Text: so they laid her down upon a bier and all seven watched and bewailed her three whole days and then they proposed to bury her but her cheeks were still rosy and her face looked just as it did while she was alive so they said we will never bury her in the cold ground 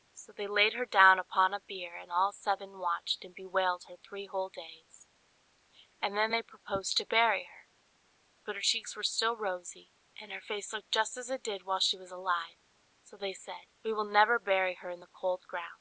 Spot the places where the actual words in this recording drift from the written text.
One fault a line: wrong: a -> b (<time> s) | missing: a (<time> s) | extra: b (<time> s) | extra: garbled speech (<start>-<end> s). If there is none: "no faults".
no faults